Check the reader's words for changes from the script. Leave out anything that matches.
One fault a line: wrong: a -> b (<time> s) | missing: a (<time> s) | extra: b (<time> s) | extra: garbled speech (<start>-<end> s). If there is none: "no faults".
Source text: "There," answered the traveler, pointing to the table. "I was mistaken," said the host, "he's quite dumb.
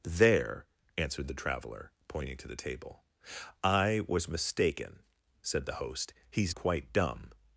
no faults